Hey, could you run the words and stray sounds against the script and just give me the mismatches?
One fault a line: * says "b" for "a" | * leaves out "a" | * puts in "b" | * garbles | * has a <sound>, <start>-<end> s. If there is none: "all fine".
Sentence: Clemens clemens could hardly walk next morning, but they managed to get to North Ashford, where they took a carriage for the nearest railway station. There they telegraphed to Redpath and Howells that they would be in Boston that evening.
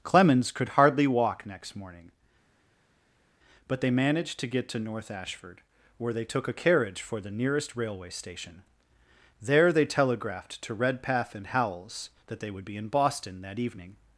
* leaves out "clemens"